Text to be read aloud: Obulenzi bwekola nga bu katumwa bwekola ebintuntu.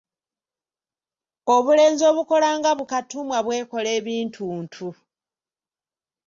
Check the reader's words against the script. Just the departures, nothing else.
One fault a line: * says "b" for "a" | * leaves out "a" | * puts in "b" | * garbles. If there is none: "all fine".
* says "obukola" for "bwekola"